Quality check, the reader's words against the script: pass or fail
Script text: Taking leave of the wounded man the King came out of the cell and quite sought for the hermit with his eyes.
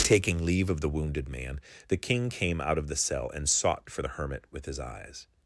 fail